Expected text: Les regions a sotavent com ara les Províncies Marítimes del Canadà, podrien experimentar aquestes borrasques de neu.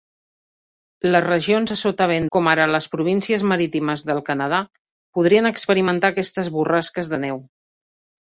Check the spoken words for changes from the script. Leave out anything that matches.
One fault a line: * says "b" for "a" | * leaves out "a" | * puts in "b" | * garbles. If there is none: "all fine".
all fine